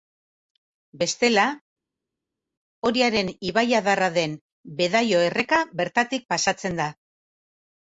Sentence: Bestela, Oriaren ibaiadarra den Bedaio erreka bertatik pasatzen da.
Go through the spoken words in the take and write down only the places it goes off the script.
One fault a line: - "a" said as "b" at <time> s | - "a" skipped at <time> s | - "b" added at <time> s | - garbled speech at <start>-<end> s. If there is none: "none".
none